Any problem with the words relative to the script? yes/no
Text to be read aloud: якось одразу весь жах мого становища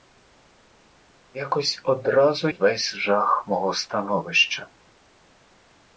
no